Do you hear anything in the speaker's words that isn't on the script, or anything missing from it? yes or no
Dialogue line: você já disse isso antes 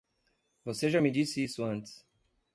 yes